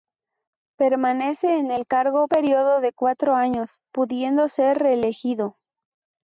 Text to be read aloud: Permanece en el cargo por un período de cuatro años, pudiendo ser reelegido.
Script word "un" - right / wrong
wrong